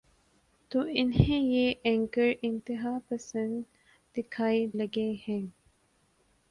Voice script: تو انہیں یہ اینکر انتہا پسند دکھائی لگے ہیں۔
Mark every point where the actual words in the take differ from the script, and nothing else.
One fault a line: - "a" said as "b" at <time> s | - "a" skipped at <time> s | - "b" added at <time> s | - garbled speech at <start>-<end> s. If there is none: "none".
none